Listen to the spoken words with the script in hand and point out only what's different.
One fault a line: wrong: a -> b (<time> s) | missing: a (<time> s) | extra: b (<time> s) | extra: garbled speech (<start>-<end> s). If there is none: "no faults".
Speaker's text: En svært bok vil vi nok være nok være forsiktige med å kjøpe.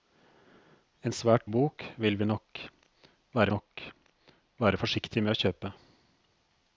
no faults